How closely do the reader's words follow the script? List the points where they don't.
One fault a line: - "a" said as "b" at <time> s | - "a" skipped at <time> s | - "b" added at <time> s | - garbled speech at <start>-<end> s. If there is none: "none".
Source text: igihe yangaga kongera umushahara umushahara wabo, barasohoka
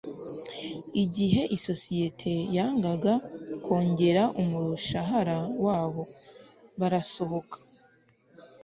- "isosiyete" added at 1.6 s
- "umushahara" skipped at 5.4 s